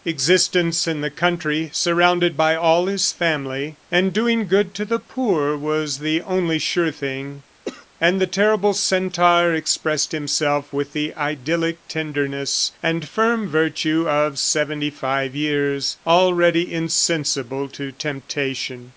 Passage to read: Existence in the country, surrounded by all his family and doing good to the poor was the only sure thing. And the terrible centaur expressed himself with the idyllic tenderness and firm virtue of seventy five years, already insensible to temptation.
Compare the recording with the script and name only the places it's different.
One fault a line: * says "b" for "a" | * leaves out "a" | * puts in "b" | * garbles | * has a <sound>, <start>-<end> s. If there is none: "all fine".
* has a cough, 7.7-7.9 s